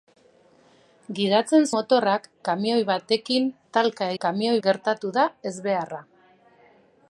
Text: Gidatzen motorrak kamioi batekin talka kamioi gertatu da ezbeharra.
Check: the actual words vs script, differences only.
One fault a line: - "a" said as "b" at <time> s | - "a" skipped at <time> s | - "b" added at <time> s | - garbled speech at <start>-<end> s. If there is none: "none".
none